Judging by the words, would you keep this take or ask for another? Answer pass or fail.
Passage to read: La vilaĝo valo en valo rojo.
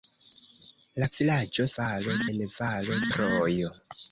pass